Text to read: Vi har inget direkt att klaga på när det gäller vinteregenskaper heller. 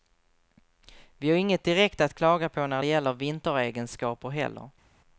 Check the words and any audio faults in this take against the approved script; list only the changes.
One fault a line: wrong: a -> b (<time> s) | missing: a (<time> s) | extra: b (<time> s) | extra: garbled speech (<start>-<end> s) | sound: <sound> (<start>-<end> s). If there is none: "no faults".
no faults